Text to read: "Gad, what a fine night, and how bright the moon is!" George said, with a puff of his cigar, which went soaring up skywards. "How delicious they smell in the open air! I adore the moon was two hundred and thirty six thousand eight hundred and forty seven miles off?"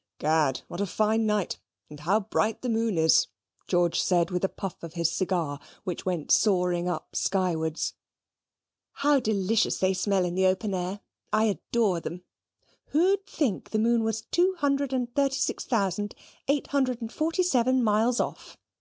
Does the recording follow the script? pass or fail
fail